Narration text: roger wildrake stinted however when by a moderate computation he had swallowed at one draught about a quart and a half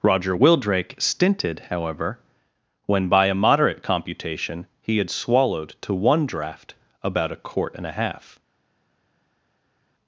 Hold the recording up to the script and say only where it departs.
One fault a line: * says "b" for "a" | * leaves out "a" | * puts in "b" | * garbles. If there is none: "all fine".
* says "to" for "at"